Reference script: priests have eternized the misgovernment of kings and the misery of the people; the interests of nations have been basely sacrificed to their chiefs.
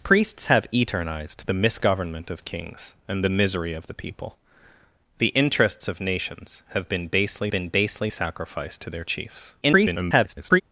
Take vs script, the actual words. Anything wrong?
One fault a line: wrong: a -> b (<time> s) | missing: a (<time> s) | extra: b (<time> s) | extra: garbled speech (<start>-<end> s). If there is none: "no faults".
extra: been basely (7.5 s)
extra: garbled speech (9.6-10.6 s)